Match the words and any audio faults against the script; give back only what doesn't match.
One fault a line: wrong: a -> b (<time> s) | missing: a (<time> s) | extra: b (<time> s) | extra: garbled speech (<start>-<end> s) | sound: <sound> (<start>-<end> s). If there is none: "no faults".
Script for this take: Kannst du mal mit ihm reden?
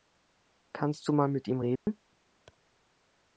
sound: dropout (1.8-1.9 s)